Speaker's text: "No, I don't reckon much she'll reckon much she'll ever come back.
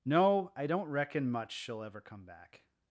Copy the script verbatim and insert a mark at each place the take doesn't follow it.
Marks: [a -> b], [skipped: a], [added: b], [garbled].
"No, I don't reckon much she'll [skipped: reckon much she'll] ever come back.